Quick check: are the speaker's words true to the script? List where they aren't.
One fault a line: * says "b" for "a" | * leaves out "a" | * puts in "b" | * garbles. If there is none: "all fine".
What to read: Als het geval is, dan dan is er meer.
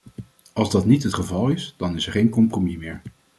* puts in "dat niet"
* leaves out "dan"
* puts in "geen compromis"